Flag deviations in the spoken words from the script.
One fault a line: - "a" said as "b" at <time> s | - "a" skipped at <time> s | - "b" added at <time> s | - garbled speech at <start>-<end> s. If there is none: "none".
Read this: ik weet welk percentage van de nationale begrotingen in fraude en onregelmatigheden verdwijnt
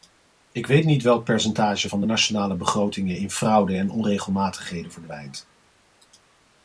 - "niet" added at 0.8 s